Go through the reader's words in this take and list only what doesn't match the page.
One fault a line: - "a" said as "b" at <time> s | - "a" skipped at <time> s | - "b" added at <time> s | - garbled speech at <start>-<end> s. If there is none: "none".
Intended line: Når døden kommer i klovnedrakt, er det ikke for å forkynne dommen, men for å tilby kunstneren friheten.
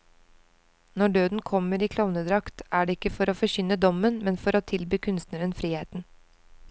none